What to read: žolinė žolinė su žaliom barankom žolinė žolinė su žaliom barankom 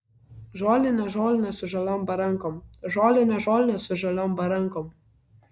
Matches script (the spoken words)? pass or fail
pass